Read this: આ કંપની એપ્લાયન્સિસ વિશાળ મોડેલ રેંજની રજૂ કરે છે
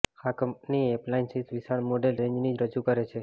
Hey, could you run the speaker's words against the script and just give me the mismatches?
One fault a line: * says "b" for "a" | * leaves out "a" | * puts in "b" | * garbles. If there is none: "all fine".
all fine